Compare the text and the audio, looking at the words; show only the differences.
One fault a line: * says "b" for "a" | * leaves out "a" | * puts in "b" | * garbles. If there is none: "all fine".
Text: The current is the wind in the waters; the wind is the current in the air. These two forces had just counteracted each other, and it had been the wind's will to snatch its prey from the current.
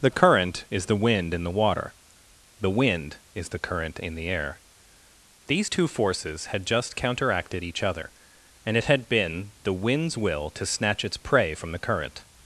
* says "water" for "waters"